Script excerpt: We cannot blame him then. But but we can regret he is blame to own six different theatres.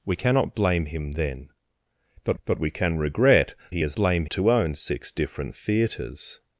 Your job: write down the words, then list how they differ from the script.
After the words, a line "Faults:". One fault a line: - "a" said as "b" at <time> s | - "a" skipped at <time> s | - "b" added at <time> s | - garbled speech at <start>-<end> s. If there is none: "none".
We cannot blame him then. But but we can regret he is blame to own six different theatres.
Faults:
none